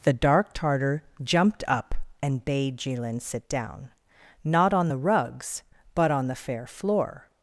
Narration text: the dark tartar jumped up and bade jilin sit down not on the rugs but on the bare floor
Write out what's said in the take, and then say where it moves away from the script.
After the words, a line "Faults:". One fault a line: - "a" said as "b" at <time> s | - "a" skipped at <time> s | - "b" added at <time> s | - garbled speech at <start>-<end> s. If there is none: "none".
the dark tartar jumped up and bade jilin sit down not on the rugs but on the fair floor
Faults:
- "bare" said as "fair" at 6.3 s